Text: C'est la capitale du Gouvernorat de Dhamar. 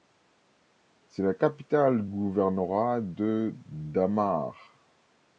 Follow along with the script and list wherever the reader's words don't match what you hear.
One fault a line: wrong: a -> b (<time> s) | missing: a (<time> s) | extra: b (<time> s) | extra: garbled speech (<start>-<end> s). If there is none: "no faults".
missing: du (2.1 s)